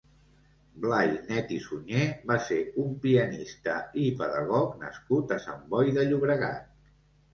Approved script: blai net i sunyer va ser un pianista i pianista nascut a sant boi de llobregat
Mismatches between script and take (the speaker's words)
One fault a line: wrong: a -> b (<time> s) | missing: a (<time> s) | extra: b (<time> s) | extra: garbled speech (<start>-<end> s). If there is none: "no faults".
wrong: pianista -> pedagog (4.2 s)